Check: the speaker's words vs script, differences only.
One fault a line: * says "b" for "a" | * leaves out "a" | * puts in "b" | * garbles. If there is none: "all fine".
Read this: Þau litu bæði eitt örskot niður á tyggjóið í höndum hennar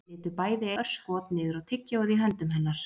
* leaves out "eitt"